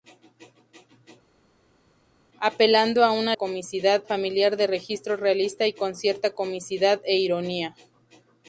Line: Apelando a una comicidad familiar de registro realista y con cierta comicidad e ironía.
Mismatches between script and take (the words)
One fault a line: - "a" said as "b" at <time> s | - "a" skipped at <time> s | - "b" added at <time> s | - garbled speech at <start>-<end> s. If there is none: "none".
none